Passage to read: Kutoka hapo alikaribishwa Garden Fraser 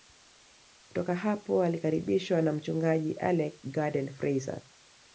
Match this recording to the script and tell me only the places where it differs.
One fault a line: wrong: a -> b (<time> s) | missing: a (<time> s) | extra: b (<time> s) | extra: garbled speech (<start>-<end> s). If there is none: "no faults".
extra: na mchungaji Alec (2.4 s)